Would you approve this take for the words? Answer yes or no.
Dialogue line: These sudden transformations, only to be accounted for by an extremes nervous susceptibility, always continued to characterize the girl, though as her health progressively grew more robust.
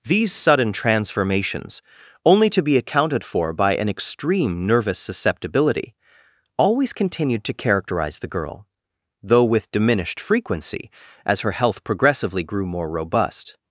no